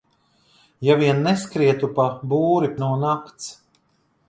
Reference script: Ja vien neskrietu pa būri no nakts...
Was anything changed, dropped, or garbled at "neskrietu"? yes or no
no